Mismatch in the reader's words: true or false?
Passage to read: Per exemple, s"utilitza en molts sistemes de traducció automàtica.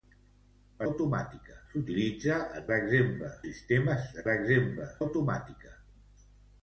true